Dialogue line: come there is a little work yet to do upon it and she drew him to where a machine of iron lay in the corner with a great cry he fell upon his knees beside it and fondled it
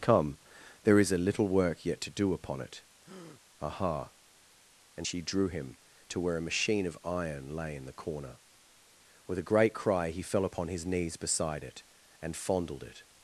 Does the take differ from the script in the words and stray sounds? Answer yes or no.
yes